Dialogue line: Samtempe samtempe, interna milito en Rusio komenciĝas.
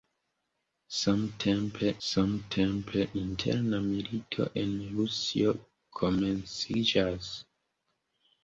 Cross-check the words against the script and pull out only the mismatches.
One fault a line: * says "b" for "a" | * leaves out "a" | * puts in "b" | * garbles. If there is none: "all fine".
all fine